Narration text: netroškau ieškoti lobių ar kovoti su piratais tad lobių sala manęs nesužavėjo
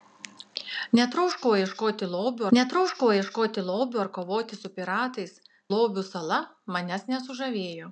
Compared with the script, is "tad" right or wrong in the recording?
wrong